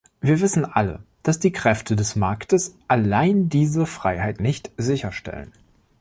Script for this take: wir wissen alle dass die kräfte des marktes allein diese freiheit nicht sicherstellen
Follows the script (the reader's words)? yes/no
yes